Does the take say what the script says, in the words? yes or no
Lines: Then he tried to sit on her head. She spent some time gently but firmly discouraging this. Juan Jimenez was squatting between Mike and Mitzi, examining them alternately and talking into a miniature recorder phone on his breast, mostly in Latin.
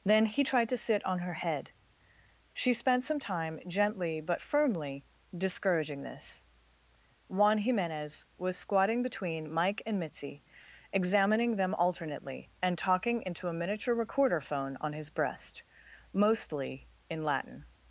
yes